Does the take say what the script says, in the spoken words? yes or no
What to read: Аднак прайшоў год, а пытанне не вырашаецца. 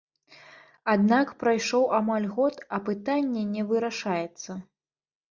no